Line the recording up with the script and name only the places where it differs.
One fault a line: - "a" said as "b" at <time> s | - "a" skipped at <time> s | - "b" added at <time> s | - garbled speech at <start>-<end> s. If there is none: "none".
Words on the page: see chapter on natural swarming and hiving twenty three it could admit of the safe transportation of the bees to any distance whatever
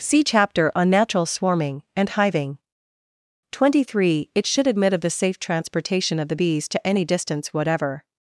- "could" said as "should" at 4.5 s